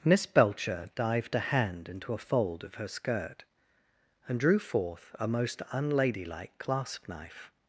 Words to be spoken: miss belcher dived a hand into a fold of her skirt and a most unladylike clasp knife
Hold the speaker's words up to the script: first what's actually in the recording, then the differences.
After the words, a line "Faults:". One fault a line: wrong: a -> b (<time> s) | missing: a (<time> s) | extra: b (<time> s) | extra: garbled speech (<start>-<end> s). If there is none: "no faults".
miss belcher dived a hand into a fold of her skirt and drew forth a most unladylike clasp knife
Faults:
extra: drew forth (4.4 s)